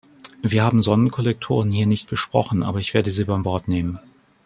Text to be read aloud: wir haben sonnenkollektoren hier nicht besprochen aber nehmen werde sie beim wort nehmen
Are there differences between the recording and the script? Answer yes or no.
yes